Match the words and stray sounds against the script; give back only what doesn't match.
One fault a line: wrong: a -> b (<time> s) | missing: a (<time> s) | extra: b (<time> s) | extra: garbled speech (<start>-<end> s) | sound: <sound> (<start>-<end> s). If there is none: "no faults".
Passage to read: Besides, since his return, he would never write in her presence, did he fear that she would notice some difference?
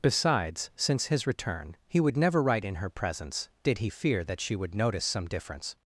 no faults